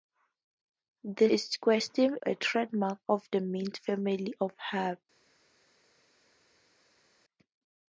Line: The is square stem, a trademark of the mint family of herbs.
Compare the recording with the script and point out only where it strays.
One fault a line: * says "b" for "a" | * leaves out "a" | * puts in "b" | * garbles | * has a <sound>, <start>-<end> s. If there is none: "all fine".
all fine